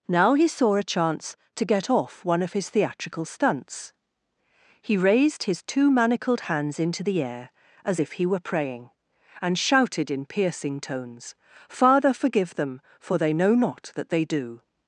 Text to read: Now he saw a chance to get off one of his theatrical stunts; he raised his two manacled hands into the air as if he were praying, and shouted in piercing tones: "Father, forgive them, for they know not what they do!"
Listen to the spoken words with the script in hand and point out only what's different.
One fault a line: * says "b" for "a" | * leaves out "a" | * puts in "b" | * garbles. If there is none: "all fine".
* says "that" for "what"